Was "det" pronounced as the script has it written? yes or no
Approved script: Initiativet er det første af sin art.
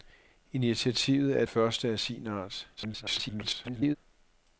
no